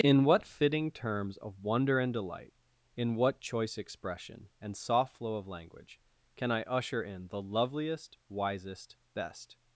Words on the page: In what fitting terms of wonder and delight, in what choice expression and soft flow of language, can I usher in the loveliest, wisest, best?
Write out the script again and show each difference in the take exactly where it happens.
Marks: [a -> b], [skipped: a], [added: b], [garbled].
In what fitting terms of wonder and delight, in what choice expression and soft flow of language, can I usher in the loveliest, wisest, best?